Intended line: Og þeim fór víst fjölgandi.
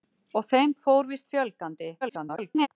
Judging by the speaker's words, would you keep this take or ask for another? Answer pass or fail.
fail